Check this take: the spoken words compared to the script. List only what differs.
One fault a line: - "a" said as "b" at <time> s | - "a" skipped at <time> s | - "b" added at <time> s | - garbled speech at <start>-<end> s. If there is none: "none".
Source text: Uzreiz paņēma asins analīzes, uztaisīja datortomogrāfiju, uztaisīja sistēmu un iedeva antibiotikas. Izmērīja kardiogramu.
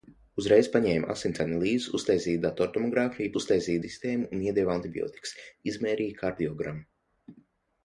none